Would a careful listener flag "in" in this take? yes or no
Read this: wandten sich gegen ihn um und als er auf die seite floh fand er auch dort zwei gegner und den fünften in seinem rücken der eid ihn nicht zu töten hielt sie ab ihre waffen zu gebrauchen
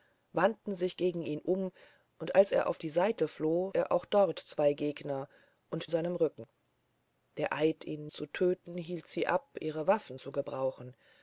yes